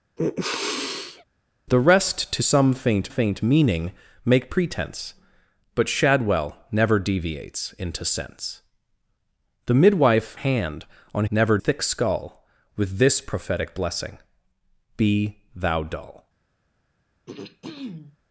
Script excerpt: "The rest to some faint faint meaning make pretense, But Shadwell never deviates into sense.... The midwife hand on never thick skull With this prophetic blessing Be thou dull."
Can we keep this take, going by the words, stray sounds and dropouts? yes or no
no